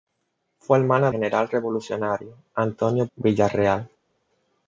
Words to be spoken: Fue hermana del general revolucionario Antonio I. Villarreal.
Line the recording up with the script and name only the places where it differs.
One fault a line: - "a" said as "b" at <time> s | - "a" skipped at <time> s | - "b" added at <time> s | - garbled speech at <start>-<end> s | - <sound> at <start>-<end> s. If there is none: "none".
- "del" skipped at 1.1 s
- "I" skipped at 3.0 s